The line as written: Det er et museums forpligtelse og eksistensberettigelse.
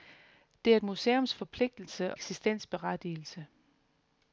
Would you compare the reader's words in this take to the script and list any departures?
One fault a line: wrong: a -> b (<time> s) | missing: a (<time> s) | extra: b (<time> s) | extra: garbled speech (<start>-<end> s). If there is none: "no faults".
missing: og (2.1 s)